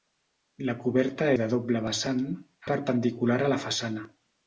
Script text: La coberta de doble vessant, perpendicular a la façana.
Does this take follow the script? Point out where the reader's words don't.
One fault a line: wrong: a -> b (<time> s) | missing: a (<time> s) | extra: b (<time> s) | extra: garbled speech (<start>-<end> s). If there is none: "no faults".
no faults